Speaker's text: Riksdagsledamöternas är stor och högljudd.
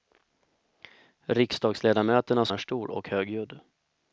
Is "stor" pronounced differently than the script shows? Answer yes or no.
no